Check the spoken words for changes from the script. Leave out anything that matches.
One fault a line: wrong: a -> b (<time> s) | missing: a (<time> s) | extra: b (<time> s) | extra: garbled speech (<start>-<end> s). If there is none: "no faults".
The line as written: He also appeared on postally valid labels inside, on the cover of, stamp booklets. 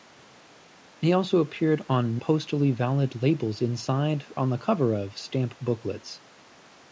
no faults